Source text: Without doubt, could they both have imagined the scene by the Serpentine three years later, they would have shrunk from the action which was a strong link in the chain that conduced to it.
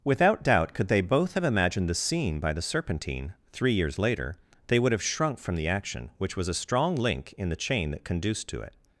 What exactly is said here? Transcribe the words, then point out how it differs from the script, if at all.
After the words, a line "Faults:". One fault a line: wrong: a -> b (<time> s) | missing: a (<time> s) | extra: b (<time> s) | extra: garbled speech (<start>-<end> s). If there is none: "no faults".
Without doubt, could they both have imagined the scene by the Serpentine three years later, they would have shrunk from the action which was a strong link in the chain that conduced to it.
Faults:
no faults